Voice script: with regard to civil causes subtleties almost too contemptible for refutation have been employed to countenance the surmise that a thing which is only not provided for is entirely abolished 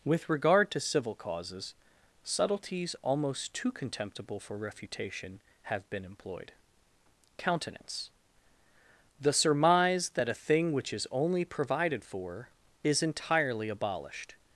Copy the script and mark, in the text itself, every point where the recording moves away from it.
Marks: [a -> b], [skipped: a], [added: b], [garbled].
with regard to civil causes subtleties almost too contemptible for refutation have been employed [skipped: to] countenance the surmise that a thing which is only [skipped: not] provided for is entirely abolished